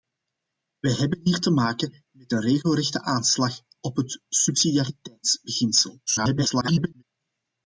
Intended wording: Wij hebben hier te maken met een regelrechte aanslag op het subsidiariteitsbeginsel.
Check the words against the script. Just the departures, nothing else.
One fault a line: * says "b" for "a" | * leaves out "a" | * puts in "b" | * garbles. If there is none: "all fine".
* garbles